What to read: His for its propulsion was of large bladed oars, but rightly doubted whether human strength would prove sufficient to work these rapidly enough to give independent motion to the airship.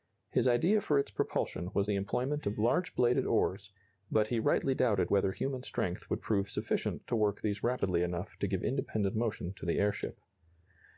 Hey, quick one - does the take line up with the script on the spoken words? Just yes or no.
no